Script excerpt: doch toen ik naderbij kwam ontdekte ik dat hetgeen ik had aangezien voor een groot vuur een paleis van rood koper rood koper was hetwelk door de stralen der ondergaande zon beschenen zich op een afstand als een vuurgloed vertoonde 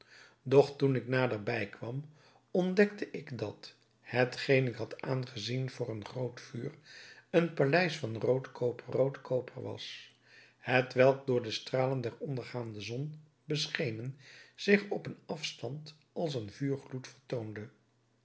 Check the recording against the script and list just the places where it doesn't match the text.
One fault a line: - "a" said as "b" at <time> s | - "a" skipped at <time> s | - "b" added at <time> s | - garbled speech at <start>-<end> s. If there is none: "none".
none